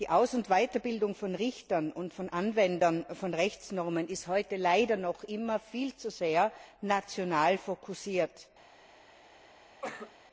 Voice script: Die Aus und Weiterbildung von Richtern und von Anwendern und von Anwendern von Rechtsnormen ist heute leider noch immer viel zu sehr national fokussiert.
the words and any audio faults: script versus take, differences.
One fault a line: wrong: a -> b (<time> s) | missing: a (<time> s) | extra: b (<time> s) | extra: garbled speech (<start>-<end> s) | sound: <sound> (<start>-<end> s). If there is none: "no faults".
missing: und von Anwendern (3.0 s)
sound: cough (9.8-10.2 s)